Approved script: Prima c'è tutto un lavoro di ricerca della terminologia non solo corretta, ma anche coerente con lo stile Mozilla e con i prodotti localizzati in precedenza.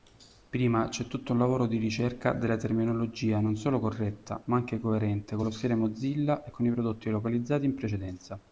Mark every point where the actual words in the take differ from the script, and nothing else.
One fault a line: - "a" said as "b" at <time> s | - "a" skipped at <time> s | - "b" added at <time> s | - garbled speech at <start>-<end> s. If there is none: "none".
none